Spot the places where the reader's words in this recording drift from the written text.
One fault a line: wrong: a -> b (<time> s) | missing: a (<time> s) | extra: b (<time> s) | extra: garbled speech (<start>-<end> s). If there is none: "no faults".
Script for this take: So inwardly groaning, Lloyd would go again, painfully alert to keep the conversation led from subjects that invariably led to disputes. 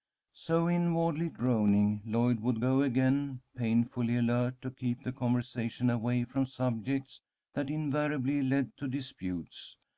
wrong: led -> away (5.9 s)